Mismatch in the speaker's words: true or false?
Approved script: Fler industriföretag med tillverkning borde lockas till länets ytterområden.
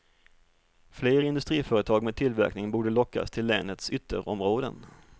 false